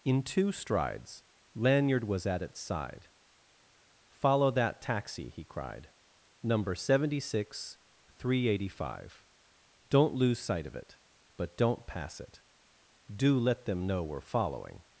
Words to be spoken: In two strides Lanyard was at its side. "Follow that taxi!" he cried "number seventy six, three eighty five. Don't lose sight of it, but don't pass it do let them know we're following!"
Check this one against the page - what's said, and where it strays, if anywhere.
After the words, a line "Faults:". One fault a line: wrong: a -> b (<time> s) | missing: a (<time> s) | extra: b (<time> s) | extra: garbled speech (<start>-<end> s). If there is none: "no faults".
In two strides Lanyard was at its side. "Follow that taxi!" he cried "number seventy six, three eighty five. Don't lose sight of it, but don't pass it do let them know we're following!"
Faults:
no faults